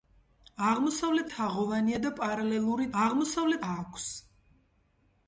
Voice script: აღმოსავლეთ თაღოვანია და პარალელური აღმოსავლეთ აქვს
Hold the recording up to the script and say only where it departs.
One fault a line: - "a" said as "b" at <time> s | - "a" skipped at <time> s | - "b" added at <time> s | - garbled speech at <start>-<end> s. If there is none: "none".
none